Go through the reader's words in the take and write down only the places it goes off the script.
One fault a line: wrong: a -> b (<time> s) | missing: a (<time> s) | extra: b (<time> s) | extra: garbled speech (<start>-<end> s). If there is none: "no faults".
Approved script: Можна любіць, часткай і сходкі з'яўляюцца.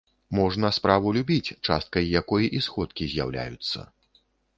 extra: справу (0.8 s)
extra: якой (2.2 s)